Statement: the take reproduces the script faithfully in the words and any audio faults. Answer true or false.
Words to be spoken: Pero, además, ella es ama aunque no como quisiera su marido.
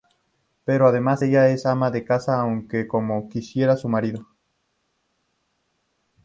false